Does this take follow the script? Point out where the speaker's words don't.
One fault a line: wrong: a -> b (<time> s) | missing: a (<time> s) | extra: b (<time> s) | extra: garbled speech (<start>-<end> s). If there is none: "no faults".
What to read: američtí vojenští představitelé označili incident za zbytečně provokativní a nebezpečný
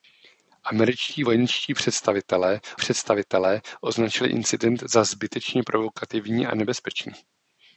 extra: představitelé (2.8 s)